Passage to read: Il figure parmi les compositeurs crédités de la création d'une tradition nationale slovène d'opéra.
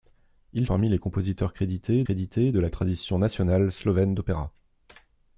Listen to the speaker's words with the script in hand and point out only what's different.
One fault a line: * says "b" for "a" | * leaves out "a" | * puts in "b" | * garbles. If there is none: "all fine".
* leaves out "figure"
* puts in "crédités"
* leaves out "création d'une"